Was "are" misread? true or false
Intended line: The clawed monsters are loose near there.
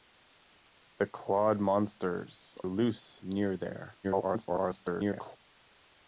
true